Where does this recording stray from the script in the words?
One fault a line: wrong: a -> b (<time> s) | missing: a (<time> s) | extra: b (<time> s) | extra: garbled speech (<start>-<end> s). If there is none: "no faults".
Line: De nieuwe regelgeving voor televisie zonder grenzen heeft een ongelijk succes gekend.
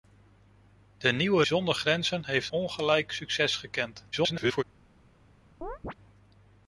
missing: regelgeving voor televisie (1.4 s)
missing: een (2.5 s)
extra: garbled speech (4.1-4.6 s)